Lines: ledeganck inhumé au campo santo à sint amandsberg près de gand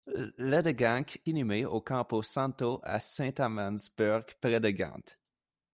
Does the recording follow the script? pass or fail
pass